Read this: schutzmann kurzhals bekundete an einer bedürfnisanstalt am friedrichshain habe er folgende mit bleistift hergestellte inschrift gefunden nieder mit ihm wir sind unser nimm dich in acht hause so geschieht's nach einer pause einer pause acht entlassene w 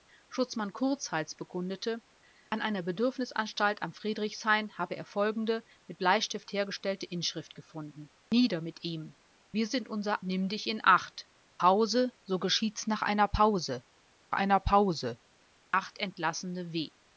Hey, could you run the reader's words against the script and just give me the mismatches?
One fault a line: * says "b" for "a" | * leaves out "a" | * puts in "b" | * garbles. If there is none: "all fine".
all fine